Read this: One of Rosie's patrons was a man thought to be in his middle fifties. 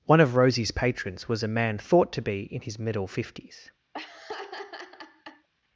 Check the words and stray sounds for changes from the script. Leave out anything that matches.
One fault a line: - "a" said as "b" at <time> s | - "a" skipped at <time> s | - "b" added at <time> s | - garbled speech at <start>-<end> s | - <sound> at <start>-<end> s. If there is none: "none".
- laugh at 3.9-5.5 s